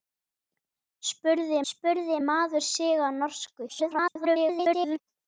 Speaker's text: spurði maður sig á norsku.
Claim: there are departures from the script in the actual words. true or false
true